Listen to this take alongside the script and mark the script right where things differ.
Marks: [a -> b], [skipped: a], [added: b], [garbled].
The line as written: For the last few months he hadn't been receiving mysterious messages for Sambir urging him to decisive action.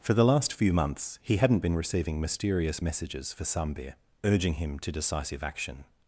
For the last few months he hadn't been receiving mysterious messages for Sambir urging him to decisive action.